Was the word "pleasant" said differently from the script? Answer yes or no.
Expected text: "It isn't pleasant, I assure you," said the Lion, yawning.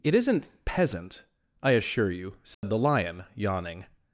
yes